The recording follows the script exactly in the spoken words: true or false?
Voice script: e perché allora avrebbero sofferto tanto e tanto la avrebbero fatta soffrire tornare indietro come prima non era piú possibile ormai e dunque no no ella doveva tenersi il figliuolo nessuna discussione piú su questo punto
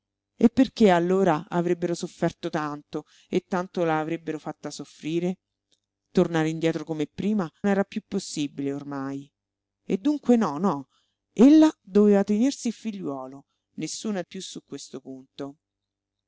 false